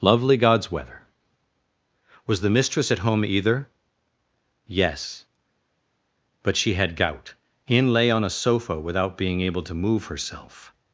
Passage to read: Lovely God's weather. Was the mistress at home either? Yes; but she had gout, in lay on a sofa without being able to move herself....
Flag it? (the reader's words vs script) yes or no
no